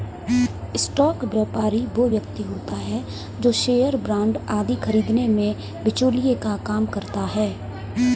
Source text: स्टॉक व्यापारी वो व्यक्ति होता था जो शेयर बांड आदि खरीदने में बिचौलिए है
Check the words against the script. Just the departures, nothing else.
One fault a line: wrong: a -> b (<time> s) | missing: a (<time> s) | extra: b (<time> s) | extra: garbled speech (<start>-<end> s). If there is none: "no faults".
wrong: था -> है (2.8 s)
extra: का काम करता (6.4 s)